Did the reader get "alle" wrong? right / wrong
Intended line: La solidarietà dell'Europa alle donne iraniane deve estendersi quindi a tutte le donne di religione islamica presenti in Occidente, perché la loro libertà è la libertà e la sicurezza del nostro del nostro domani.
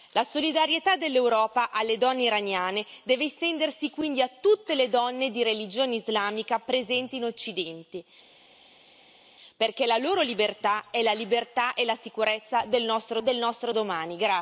right